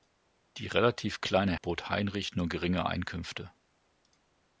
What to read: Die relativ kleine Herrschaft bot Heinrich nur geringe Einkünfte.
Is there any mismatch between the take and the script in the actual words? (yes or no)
yes